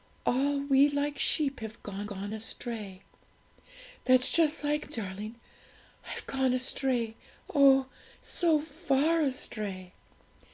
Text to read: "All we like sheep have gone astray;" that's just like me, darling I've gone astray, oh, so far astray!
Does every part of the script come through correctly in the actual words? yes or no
no